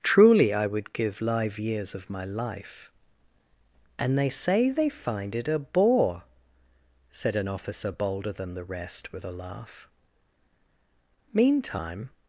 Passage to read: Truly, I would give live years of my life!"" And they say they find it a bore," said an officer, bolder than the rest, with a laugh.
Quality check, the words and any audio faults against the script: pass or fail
fail